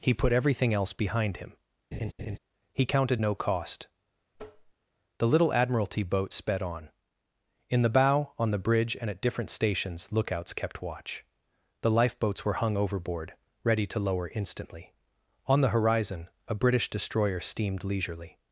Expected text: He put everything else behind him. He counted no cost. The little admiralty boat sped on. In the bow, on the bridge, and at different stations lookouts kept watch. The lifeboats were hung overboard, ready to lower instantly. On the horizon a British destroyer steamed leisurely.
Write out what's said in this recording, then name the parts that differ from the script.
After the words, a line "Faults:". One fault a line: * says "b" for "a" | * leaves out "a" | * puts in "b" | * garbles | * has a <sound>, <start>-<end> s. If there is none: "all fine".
He put everything else behind him. He counted no cost. The little admiralty boat sped on. In the bow, on the bridge, and at different stations lookouts kept watch. The lifeboats were hung overboard, ready to lower instantly. On the horizon a British destroyer steamed leisurely.
Faults:
* has a laugh, 1.9-2.4 s
* has a tap, 4.3-4.7 s